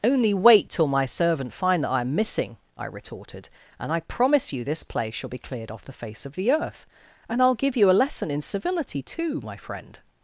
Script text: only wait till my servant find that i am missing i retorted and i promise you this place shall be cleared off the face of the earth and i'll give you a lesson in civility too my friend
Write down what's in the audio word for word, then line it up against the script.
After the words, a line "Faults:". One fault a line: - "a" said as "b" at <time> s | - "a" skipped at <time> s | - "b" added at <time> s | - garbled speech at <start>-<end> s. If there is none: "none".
only wait till my servant find that i am missing i retorted and i promise you this place shall be cleared off the face of the earth and i'll give you a lesson in civility too my friend
Faults:
none